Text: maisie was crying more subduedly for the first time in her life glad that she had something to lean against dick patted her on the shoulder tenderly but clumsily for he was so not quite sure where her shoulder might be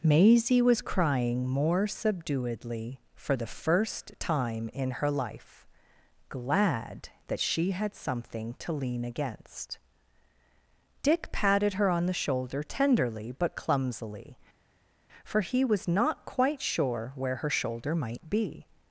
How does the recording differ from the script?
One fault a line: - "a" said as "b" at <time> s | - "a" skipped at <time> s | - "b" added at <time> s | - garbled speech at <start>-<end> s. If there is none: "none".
- "so" skipped at 15.9 s